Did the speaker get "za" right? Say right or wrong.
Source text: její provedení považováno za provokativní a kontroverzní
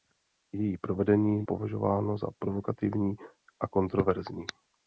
right